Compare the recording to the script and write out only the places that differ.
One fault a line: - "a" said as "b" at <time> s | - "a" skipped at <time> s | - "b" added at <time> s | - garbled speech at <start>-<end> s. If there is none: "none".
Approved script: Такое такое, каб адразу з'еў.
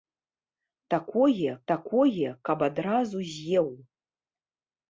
none